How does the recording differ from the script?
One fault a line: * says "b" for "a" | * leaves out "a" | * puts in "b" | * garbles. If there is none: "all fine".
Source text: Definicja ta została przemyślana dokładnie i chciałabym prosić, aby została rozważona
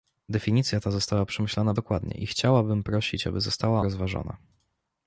all fine